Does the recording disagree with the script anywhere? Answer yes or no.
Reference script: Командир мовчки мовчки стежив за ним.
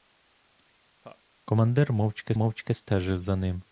no